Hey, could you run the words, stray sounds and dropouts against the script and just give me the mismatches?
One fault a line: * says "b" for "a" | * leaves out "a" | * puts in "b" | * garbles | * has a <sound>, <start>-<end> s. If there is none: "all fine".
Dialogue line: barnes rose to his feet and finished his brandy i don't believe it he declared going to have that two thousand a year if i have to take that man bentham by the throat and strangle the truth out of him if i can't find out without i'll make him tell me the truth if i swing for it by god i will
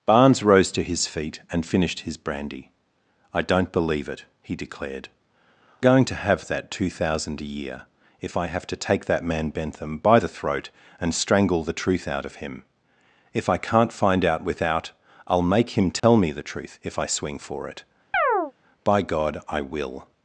* has a dropout, 16.0-16.0 s
* has a chirp, 18.1-18.5 s